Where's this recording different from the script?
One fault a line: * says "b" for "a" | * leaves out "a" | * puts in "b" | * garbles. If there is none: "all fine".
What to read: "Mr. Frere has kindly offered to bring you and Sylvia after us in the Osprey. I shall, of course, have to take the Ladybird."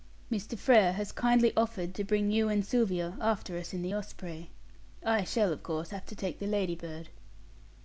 all fine